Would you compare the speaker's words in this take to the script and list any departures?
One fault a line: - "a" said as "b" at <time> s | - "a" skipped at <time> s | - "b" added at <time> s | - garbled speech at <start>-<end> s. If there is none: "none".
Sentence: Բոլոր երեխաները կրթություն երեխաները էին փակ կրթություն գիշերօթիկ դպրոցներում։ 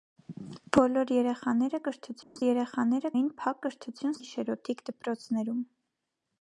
none